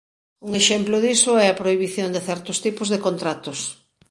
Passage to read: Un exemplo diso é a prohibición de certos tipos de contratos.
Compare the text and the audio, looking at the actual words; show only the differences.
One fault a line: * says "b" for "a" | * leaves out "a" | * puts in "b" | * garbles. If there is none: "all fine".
all fine